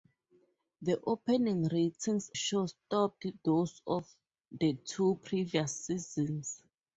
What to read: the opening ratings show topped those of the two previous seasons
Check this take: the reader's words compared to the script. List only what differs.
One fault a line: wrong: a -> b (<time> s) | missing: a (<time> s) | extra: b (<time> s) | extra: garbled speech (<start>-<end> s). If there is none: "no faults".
no faults